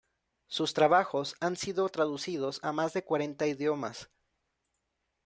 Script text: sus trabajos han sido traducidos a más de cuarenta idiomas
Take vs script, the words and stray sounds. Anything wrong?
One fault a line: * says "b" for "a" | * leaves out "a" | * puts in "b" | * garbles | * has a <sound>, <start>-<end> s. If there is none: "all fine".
all fine